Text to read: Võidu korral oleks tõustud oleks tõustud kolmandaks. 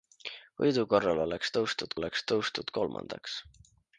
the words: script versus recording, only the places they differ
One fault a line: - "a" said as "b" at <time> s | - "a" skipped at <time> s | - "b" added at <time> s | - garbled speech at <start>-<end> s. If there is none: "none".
none